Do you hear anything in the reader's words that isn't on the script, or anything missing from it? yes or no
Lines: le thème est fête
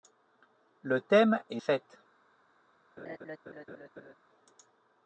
no